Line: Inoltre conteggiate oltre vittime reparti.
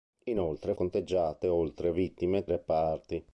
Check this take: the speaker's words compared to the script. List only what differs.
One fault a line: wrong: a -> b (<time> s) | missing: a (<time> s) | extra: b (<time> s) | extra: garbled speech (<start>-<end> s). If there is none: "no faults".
no faults